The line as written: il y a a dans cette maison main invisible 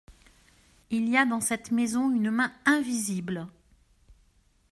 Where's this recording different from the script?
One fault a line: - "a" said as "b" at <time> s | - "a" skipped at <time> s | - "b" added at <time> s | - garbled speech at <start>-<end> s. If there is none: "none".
- "a" skipped at 1.3 s
- "une" added at 2.1 s